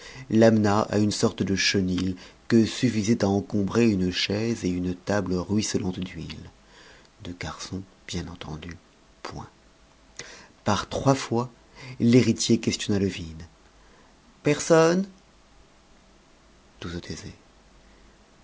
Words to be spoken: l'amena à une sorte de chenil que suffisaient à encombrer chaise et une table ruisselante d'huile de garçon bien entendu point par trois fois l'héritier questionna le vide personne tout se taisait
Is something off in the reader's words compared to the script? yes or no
yes